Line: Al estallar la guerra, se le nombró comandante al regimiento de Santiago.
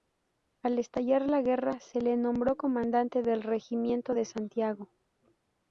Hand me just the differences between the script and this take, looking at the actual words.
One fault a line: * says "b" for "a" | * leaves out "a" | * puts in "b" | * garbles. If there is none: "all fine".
* says "del" for "al"